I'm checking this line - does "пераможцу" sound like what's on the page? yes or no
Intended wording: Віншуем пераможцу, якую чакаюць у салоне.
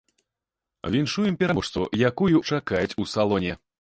yes